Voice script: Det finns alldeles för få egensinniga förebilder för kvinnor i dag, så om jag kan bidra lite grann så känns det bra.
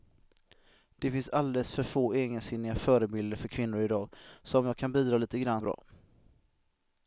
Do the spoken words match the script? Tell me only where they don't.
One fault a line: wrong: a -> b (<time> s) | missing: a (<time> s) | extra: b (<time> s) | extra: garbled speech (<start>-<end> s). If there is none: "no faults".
missing: så känns det (5.6 s)